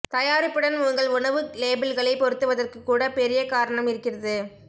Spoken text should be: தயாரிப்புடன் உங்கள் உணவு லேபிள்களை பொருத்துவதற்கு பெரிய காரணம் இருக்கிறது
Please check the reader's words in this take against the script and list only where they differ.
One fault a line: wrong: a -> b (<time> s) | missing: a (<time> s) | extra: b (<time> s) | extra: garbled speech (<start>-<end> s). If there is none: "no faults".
extra: கூட (2.8 s)